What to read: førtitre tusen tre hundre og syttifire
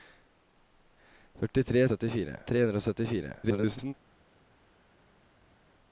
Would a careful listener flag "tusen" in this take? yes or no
yes